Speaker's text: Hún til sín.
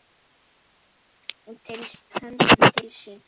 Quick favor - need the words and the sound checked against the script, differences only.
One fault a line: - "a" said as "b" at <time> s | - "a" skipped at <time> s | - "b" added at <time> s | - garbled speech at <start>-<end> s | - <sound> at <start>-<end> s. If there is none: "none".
none